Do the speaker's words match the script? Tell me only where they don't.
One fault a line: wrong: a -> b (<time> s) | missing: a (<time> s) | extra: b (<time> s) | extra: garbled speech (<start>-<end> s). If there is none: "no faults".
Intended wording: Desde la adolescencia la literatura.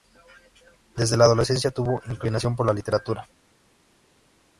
extra: tuvo inclinación por (1.7 s)